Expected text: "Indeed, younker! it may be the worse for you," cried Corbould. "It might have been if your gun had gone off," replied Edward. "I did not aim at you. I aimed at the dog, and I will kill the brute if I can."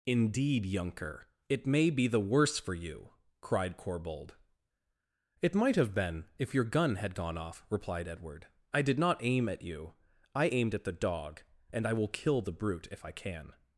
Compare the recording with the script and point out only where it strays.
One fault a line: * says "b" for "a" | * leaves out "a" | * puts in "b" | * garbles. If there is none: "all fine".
all fine